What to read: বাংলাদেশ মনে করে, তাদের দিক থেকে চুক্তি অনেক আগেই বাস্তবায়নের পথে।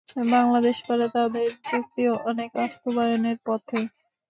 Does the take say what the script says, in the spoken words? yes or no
no